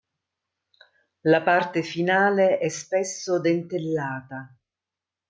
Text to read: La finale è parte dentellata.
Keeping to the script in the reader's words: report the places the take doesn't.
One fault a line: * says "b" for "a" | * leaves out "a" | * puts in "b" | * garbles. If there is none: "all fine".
* puts in "parte"
* says "spesso" for "parte"